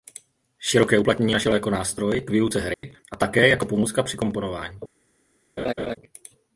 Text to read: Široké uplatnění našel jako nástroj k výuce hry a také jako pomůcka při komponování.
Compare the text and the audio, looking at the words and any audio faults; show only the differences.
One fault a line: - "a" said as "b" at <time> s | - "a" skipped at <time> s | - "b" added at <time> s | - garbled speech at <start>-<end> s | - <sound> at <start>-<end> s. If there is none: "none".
- dropout at 2.7-2.8 s
- laugh at 5.6-6.0 s